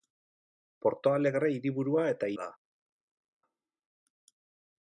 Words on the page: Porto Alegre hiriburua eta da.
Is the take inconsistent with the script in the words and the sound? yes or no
no